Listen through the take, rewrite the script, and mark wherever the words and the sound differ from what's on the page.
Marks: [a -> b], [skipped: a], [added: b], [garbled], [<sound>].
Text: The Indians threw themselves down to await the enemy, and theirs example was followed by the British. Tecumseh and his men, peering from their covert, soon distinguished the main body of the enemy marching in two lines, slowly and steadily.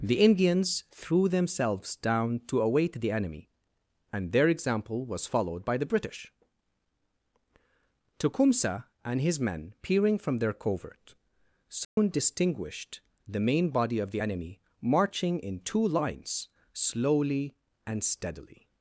The Indians threw themselves down to await the enemy, and [theirs -> their] example was followed by the British. Tecumseh and his men, peering from their covert, soon [dropout] distinguished the main body of the enemy marching in two lines, slowly and steadily.